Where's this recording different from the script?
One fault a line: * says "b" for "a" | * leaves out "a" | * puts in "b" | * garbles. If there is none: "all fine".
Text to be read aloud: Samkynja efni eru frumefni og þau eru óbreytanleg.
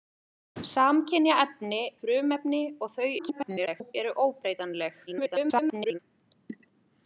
* leaves out "eru"
* garbles
* garbles